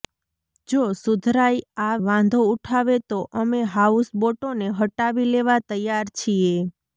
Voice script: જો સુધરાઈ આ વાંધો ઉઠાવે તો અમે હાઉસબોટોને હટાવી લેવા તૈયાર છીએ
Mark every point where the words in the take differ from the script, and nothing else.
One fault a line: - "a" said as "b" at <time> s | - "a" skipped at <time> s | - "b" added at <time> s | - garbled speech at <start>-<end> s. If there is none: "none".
none